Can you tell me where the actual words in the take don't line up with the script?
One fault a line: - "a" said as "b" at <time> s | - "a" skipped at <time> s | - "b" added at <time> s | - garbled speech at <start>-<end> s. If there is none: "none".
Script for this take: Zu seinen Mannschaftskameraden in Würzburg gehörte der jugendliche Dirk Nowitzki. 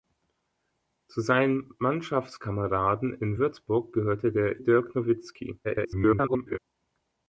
- "jugendliche" skipped at 4.6 s
- garbled speech at 5.6-6.6 s